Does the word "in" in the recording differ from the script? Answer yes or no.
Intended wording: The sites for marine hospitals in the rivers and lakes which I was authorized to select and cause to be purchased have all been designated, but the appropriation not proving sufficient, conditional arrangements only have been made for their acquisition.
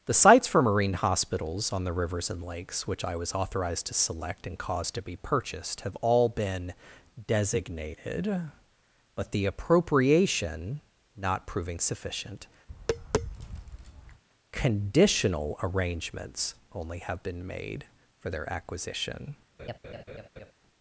yes